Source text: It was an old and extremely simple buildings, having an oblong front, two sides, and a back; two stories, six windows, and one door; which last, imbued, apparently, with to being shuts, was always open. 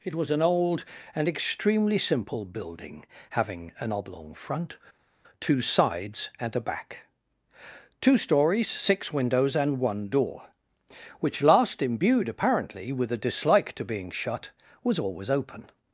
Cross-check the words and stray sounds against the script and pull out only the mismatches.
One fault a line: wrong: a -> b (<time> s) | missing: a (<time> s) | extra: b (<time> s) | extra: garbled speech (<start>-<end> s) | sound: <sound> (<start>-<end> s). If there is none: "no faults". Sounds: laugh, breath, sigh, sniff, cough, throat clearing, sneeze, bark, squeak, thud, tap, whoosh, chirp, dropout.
wrong: buildings -> building (2.5 s)
extra: a dislike (13.1 s)
wrong: shuts -> shut (14.1 s)